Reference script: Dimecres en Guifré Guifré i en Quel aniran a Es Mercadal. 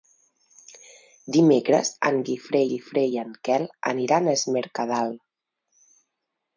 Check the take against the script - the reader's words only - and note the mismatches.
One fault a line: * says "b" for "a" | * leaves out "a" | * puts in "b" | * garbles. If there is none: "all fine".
all fine